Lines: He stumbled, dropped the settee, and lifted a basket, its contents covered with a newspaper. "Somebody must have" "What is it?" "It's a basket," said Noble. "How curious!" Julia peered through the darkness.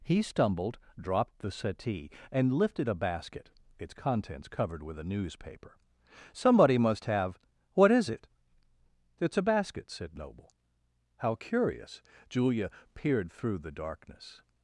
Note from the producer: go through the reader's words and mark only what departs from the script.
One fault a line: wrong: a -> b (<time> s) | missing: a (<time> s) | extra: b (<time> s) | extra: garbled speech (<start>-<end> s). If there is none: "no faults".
no faults